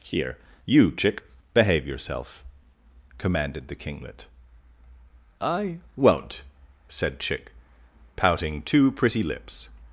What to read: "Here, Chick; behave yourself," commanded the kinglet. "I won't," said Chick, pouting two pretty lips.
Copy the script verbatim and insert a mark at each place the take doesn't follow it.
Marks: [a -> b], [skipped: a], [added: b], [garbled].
"Here, [added: you] Chick; behave yourself," commanded the kinglet. "I won't," said Chick, pouting two pretty lips.